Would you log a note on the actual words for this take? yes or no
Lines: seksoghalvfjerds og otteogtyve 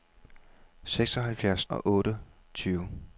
no